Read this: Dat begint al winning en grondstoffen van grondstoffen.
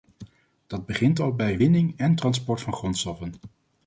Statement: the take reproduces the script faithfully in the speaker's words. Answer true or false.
false